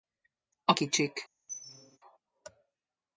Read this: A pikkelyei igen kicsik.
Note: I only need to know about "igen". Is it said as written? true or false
false